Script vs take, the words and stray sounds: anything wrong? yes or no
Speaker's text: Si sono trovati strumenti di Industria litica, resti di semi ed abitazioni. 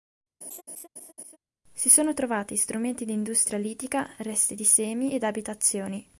yes